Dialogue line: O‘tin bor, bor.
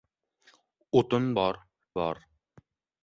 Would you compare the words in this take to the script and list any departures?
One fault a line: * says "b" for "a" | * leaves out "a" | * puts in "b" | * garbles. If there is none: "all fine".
all fine